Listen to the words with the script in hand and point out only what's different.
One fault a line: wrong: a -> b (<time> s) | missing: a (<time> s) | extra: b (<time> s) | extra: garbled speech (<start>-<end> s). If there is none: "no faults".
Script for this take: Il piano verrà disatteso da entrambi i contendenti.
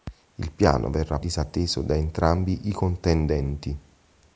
no faults